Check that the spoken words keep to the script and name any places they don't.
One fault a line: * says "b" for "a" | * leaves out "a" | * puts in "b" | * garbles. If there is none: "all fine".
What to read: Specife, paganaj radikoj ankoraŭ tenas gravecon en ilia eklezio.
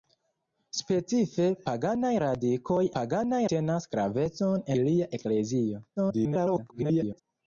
* says "paganaj" for "ankoraŭ"
* leaves out "en"
* garbles